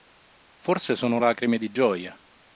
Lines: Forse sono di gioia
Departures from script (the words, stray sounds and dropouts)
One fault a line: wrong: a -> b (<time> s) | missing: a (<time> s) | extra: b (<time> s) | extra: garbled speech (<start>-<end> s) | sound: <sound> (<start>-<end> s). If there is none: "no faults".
extra: lacrime (1.2 s)